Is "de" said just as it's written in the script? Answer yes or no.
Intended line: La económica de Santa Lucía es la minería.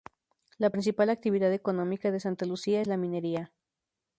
yes